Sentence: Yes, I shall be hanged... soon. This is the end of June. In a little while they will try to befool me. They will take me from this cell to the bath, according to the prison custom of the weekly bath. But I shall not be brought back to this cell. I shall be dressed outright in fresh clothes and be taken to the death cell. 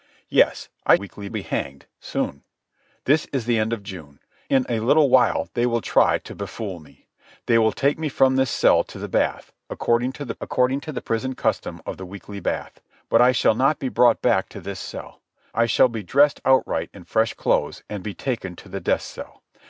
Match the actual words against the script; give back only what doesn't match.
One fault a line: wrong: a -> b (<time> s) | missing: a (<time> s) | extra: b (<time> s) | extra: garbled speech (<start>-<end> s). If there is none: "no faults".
wrong: shall -> weekly (0.9 s)
extra: according to the (10.4 s)